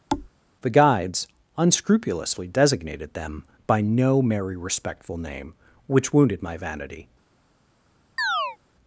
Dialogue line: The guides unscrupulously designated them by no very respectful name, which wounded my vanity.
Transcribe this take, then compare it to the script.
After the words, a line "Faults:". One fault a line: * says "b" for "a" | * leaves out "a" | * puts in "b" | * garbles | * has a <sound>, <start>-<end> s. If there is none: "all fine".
The guides unscrupulously designated them by no merry respectful name, which wounded my vanity.
Faults:
* has a thud, 0.1-0.3 s
* says "merry" for "very"
* has a chirp, 8.2-8.6 s